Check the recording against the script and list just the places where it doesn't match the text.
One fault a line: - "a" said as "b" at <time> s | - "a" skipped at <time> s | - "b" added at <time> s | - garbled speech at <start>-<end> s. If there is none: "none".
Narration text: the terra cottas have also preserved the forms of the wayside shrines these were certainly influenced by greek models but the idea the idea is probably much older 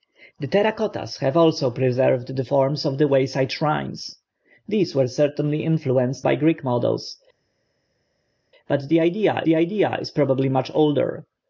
none